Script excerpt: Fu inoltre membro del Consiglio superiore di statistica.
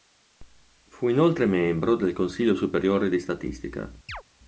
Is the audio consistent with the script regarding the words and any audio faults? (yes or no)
no